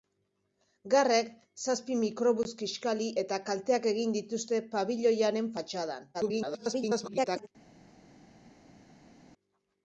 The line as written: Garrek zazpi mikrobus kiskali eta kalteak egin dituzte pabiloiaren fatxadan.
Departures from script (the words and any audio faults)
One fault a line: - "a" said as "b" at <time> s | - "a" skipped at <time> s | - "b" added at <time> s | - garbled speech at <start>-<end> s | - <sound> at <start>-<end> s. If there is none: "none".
- garbled speech at 6.1-7.5 s